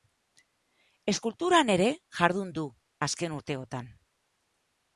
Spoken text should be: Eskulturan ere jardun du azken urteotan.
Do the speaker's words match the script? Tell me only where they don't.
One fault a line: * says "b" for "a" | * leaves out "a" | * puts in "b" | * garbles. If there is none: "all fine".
all fine